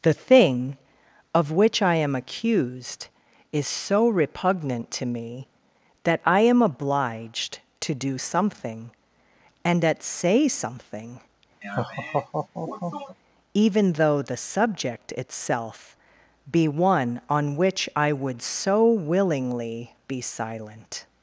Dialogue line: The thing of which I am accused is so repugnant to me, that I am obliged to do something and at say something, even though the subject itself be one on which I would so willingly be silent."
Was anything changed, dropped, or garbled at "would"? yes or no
no